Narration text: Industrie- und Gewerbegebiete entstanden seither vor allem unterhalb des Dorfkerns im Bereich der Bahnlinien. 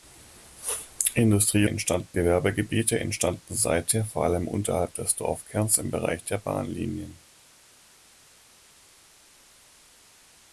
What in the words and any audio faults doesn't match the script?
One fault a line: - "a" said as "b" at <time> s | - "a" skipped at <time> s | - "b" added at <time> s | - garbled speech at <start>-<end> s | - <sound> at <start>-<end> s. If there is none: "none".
- "und" said as "entstanden" at 1.6 s